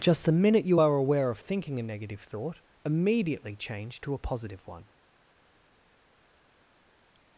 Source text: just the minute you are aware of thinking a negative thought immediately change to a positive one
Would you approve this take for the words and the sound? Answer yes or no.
yes